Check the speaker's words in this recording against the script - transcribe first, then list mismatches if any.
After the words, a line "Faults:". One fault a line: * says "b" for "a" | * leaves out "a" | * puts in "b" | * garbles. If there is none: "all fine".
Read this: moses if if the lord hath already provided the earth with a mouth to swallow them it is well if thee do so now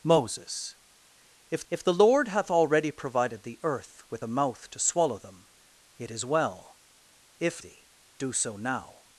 moses if if the lord hath already provided the earth with a mouth to swallow them it is well if thee do so now
Faults:
all fine